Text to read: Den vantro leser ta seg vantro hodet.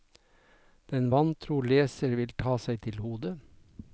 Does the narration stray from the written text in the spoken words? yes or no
yes